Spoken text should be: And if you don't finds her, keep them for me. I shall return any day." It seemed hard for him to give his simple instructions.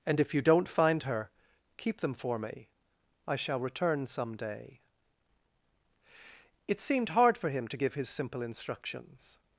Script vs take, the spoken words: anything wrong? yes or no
yes